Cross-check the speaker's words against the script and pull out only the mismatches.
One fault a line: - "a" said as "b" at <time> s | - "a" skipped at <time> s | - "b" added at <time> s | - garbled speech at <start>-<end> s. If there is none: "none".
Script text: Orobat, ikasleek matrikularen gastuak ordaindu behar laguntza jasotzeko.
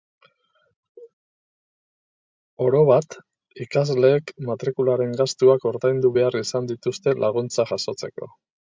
- "izan dituzte" added at 6.5 s